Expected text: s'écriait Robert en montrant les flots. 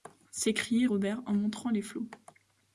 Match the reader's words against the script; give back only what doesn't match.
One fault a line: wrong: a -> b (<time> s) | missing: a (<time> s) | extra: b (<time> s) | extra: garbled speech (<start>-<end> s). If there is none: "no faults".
no faults